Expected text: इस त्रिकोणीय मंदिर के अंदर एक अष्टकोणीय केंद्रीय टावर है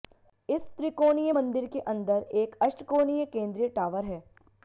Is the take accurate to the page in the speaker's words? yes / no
yes